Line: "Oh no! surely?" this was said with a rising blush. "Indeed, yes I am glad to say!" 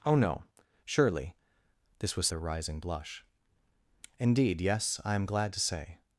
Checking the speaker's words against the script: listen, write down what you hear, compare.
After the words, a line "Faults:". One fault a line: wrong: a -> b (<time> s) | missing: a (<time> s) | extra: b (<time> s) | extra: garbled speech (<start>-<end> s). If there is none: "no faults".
"Oh no! surely?" this was a rising blush. "Indeed, yes I am glad to say!"
Faults:
missing: said with (2.3 s)